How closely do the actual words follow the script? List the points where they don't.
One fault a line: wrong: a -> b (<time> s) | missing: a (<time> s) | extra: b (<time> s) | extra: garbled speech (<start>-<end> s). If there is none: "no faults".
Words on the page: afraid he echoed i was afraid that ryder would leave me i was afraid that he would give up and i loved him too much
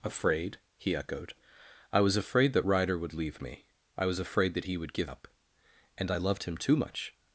no faults